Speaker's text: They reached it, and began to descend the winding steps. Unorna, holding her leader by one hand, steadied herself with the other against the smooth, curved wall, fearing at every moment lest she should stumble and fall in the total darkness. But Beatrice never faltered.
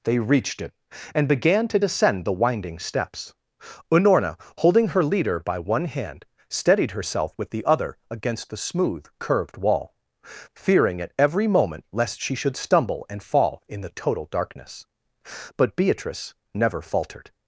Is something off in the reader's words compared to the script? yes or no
no